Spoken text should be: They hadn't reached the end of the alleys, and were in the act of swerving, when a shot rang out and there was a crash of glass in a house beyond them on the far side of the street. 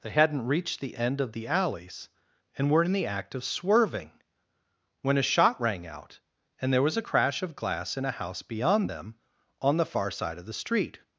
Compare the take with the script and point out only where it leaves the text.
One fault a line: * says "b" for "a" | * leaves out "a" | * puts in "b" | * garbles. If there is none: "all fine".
all fine